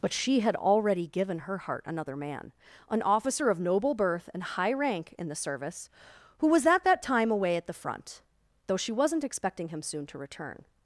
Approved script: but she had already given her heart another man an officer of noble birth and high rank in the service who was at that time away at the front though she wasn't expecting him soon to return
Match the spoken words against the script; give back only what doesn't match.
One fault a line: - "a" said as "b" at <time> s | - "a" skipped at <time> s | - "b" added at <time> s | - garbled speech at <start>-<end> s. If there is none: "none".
none